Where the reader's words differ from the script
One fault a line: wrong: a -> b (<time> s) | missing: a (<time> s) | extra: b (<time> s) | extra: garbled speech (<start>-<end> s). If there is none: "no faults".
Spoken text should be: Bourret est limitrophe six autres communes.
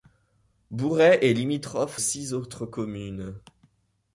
no faults